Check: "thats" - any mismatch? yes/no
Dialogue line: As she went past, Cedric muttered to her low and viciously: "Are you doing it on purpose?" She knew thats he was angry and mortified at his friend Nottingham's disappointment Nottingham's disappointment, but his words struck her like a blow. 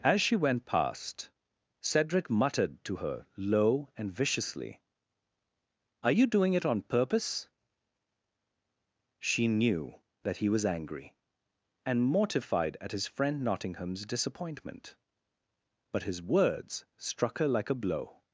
yes